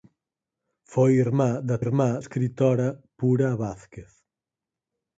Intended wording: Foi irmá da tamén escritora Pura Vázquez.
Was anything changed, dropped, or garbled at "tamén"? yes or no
yes